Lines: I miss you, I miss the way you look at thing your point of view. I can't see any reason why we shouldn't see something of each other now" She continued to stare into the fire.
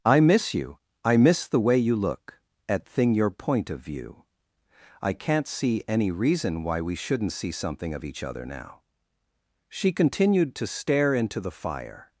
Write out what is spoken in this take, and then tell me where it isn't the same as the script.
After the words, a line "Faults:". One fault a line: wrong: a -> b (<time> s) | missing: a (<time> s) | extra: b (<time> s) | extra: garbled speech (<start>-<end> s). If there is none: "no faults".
I miss you, I miss the way you look at thing your point of view. I can't see any reason why we shouldn't see something of each other now" She continued to stare into the fire.
Faults:
no faults